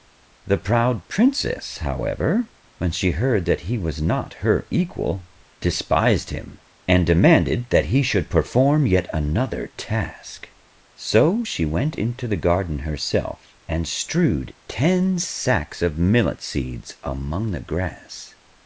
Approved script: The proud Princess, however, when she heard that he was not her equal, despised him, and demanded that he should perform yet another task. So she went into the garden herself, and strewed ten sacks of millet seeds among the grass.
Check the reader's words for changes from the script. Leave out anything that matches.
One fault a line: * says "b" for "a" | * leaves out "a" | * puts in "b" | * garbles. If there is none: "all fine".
all fine